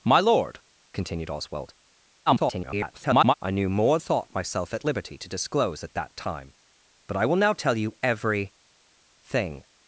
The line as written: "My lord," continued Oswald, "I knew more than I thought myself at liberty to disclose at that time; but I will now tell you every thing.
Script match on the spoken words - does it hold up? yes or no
no